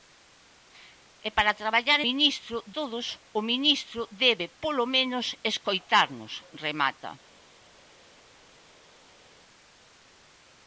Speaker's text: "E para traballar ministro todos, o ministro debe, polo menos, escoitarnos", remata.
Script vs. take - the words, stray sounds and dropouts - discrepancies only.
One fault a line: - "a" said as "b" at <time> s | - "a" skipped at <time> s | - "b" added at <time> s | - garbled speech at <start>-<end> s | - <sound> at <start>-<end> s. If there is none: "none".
none